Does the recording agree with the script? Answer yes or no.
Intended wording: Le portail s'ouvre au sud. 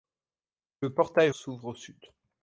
yes